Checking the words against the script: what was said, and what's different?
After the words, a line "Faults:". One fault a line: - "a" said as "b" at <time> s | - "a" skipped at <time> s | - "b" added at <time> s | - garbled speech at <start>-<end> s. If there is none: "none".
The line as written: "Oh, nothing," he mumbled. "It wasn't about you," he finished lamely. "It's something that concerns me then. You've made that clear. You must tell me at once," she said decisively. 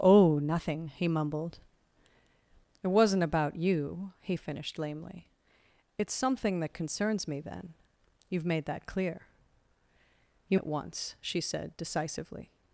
"Oh, nothing," he mumbled. "It wasn't about you," he finished lamely. "It's something that concerns me then. You've made that clear. You at once," she said decisively.
Faults:
- "must tell me" skipped at 10.6 s